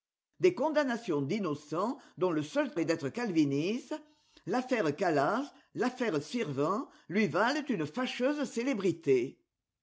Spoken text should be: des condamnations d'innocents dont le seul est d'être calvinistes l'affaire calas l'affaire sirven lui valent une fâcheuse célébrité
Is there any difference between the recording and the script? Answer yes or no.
no